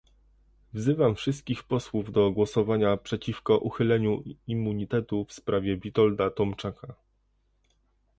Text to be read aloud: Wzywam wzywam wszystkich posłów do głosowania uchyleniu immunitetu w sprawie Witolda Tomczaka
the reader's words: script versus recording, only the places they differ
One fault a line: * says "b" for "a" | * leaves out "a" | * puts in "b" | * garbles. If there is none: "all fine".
* leaves out "wzywam"
* puts in "przeciwko"